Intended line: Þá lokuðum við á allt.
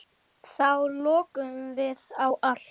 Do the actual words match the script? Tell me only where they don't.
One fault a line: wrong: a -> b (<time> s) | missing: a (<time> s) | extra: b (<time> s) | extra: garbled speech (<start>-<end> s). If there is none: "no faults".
no faults